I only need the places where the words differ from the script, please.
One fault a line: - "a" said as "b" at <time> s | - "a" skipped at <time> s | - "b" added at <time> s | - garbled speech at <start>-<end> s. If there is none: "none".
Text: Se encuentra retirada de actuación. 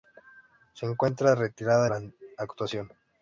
- "la" added at 1.9 s